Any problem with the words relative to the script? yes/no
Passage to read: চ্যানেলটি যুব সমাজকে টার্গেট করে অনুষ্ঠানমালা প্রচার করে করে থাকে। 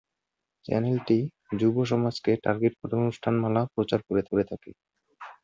no